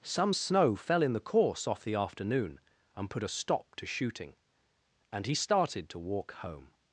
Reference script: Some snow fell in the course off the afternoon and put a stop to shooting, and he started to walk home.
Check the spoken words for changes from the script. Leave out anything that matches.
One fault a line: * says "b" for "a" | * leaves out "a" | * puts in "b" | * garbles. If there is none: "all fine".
all fine